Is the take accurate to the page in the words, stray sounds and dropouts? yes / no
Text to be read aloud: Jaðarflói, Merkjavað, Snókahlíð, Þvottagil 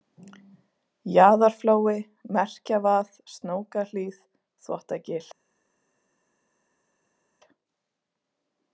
yes